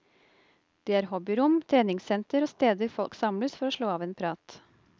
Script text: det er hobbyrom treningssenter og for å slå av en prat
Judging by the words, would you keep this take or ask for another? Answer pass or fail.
fail